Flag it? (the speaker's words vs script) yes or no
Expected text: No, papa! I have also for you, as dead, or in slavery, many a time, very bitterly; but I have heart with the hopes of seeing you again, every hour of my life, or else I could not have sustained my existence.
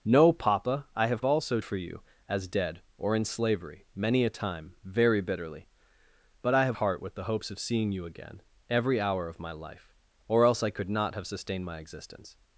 no